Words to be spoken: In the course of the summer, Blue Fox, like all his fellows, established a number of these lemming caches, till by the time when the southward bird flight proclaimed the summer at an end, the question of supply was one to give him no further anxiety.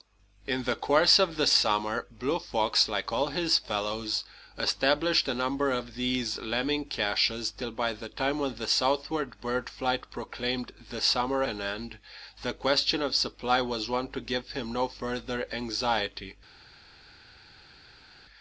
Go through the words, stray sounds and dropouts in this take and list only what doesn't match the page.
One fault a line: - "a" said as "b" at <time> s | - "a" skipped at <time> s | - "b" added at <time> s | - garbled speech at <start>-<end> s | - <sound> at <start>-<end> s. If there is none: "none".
- "at" skipped at 11.4 s